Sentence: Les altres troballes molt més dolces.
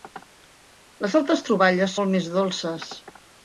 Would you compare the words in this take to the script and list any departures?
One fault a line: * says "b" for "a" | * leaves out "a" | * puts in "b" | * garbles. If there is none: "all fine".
all fine